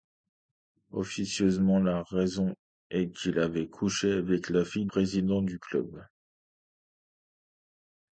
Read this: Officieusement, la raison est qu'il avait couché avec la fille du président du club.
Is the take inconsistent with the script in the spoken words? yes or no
yes